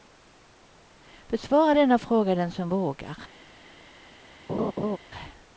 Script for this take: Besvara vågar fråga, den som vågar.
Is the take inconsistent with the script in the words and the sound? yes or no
yes